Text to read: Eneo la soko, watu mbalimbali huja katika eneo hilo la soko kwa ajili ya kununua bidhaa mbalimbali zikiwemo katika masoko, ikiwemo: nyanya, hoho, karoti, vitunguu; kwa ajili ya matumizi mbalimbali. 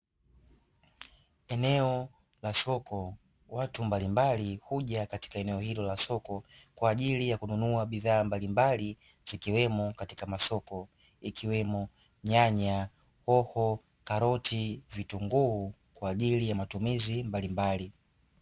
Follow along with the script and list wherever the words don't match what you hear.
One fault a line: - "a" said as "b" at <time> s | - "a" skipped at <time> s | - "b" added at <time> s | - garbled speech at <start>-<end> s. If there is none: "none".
none